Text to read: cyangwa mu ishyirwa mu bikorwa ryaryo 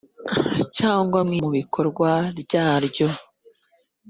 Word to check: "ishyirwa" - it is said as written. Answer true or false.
false